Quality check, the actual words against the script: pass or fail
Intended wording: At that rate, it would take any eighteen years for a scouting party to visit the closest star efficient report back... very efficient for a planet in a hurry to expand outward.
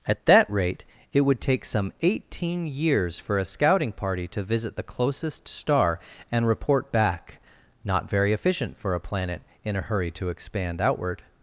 fail